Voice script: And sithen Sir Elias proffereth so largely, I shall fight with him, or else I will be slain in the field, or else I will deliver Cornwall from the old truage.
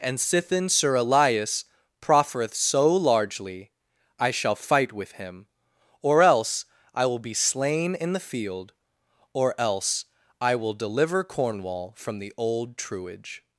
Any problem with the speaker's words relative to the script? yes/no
no